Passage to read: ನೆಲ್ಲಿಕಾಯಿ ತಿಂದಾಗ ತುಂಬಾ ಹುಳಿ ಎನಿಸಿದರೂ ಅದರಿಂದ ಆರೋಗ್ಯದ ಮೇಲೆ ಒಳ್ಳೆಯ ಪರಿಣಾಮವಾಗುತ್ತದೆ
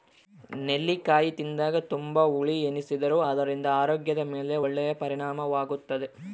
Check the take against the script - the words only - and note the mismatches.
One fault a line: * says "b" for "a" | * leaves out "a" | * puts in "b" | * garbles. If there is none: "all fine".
all fine